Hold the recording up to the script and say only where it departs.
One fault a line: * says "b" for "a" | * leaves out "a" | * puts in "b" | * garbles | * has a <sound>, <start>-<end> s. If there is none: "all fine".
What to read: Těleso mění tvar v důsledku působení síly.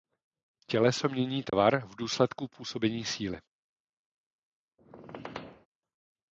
* has a dropout, 1.5-1.5 s
* has a squeak, 4.8-5.7 s